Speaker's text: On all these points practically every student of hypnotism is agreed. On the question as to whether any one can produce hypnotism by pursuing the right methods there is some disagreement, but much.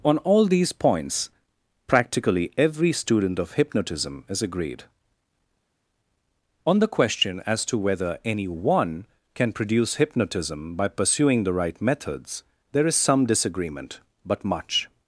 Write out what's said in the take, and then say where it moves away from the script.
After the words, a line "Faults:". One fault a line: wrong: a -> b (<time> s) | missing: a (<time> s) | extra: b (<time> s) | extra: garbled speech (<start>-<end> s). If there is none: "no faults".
On all these points practically every student of hypnotism is agreed. On the question as to whether any one can produce hypnotism by pursuing the right methods there is some disagreement, but much.
Faults:
no faults